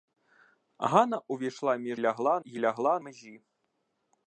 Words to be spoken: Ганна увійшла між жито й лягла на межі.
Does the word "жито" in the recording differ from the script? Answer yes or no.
yes